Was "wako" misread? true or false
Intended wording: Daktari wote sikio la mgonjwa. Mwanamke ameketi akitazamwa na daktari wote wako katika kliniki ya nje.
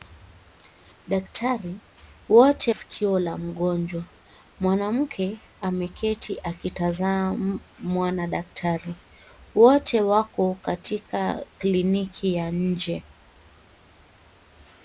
false